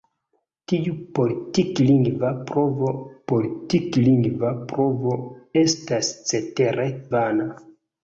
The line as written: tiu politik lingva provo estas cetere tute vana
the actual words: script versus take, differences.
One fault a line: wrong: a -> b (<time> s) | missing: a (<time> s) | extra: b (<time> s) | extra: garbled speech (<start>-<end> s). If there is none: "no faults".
extra: politik lingva provo (3.3 s)
missing: tute (6.9 s)